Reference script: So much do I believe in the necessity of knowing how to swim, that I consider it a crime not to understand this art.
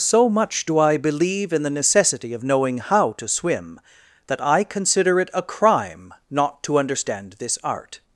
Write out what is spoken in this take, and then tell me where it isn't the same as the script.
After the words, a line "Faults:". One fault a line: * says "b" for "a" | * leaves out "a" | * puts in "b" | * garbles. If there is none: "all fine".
So much do I believe in the necessity of knowing how to swim, that I consider it a crime not to understand this art.
Faults:
all fine